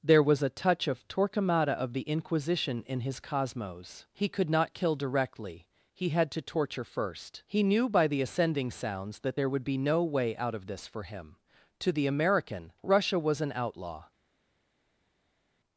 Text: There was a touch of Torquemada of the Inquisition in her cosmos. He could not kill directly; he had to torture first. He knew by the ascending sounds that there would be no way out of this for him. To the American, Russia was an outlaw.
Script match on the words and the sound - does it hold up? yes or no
no